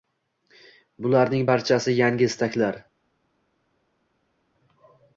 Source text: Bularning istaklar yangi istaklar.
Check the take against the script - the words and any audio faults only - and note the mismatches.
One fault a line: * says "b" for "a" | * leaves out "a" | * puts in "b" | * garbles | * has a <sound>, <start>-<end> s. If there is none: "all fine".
* says "barchasi" for "istaklar"